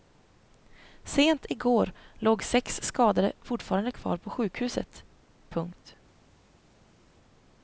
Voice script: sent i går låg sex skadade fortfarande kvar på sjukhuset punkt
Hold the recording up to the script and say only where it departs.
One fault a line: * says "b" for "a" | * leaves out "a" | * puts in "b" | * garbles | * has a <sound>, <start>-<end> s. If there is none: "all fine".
all fine